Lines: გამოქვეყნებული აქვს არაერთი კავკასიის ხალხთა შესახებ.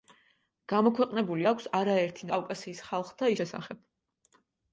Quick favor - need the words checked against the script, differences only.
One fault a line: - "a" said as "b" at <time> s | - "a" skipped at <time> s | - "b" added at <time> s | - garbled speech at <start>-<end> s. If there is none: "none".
none